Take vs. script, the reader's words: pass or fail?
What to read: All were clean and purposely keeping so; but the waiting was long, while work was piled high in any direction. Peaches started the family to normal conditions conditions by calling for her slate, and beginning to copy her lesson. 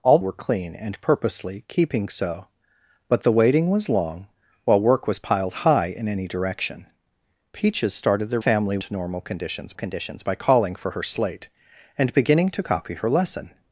pass